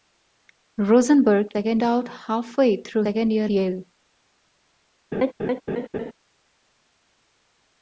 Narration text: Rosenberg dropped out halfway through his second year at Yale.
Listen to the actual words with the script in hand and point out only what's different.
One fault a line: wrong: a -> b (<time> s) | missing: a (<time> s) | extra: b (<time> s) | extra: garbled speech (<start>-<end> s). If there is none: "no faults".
wrong: dropped -> second (1.5 s)
missing: his (3.0 s)
missing: at (3.5 s)